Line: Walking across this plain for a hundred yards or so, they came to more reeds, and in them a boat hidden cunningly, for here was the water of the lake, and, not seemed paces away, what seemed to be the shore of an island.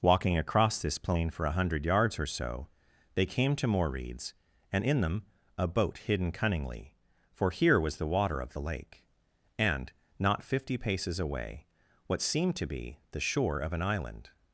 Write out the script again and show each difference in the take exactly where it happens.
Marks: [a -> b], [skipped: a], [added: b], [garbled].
Walking across this plain for a hundred yards or so, they came to more reeds, and in them a boat hidden cunningly, for here was the water of the lake, and, not [seemed -> fifty] paces away, what seemed to be the shore of an island.